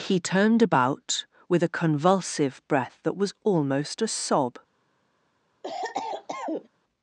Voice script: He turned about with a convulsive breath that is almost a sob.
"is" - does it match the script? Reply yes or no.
no